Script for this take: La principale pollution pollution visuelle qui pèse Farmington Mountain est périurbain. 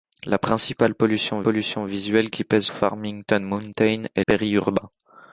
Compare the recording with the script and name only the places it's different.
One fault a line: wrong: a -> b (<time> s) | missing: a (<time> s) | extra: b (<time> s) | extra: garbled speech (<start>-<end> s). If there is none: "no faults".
no faults